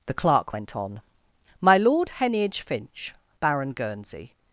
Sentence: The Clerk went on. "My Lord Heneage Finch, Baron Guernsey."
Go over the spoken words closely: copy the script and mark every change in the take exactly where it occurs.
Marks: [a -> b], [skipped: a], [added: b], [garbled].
The Clerk went on. "My Lord Heneage Finch, Baron Guernsey."